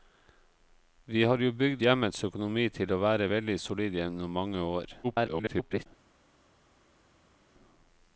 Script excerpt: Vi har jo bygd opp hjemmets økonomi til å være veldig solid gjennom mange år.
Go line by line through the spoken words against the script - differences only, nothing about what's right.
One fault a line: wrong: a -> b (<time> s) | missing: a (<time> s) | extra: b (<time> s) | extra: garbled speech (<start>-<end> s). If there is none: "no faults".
missing: opp (1.8 s)
extra: garbled speech (5.0-5.9 s)